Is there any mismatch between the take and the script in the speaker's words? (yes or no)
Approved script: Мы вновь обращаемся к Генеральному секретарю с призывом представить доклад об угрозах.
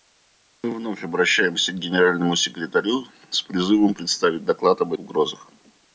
no